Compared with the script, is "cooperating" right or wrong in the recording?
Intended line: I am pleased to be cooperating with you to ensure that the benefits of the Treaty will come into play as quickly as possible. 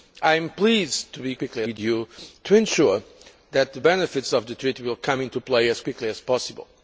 wrong